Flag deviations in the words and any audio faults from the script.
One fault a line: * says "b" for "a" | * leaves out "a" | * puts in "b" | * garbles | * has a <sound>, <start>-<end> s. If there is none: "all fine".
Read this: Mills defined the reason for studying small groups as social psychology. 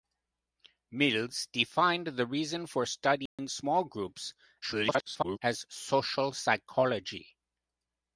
* has a dropout, 3.3-3.4 s
* garbles